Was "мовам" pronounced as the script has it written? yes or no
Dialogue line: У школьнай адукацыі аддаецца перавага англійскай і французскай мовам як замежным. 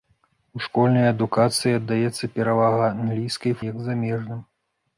no